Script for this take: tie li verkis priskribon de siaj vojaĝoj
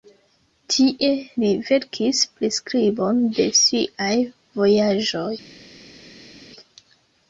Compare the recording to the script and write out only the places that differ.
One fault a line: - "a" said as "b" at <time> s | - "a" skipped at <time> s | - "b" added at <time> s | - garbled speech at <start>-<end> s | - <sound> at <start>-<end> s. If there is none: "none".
none